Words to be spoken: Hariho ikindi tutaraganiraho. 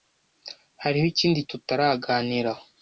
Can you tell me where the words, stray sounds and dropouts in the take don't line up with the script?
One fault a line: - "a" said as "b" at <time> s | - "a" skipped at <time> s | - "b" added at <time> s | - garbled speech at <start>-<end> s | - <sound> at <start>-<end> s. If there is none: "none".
none